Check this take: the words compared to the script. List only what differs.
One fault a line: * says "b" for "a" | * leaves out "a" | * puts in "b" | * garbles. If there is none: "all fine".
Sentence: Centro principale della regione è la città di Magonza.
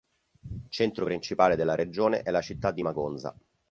all fine